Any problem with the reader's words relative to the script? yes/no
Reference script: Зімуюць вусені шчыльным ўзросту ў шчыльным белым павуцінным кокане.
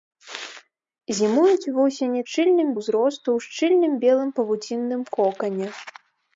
no